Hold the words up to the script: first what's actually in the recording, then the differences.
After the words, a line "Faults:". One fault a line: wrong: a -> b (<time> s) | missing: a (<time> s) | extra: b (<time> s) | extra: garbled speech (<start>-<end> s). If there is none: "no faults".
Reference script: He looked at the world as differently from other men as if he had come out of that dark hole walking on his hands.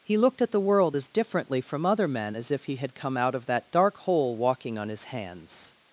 He looked at the world as differently from other men as if he had come out of that dark hole walking on his hands.
Faults:
no faults